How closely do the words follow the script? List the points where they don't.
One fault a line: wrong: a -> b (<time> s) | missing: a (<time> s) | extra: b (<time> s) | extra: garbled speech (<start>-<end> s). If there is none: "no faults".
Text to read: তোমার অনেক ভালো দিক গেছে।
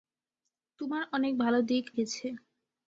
no faults